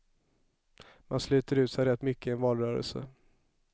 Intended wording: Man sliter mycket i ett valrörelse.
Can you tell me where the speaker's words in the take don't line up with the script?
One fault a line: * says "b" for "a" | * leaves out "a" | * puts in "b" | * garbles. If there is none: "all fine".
* puts in "ut sig rätt"
* says "en" for "ett"